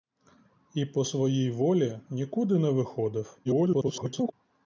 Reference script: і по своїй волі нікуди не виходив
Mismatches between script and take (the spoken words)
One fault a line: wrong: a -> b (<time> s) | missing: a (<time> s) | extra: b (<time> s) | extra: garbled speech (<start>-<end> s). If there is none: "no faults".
extra: garbled speech (3.4-4.3 s)